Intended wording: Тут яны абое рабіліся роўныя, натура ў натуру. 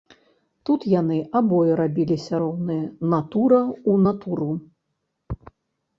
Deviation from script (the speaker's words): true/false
false